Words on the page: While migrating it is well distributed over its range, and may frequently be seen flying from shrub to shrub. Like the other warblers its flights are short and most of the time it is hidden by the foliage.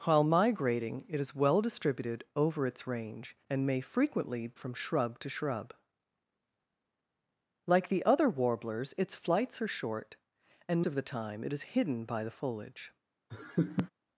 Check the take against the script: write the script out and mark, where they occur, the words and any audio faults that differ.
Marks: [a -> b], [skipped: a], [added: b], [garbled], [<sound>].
While migrating it is well distributed over its range, and may frequently [skipped: be seen flying] from shrub to shrub. Like the other warblers its flights are short and [skipped: most] of the time it is hidden by the foliage. [laugh]